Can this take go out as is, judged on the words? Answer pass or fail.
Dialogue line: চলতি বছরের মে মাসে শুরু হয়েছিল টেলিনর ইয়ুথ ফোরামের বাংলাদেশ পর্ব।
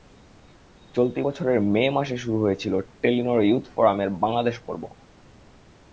pass